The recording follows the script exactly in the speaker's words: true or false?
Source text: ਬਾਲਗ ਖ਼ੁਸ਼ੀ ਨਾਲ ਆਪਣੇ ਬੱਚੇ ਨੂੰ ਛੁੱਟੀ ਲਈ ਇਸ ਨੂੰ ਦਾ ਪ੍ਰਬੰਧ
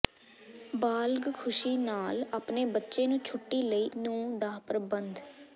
false